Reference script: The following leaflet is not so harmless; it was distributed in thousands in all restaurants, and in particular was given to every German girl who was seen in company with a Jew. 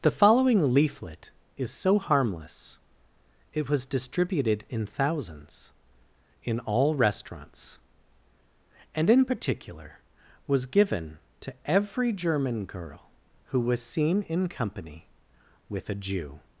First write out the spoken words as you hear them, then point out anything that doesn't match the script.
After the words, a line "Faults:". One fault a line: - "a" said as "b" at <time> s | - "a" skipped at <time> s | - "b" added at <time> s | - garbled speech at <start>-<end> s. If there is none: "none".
The following leaflet is so harmless; it was distributed in thousands in all restaurants, and in particular was given to every German girl who was seen in company with a Jew.
Faults:
- "not" skipped at 1.7 s